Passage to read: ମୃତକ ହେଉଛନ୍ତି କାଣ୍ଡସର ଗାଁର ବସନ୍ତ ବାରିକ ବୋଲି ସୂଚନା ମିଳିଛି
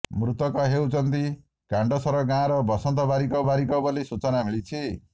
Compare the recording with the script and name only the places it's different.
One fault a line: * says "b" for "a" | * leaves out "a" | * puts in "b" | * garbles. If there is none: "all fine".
* puts in "ବାରିକ"